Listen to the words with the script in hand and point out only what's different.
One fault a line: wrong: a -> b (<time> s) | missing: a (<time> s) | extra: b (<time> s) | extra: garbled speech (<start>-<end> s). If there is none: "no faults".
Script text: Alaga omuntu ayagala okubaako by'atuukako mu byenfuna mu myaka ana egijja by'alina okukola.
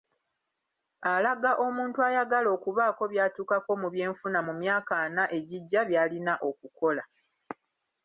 no faults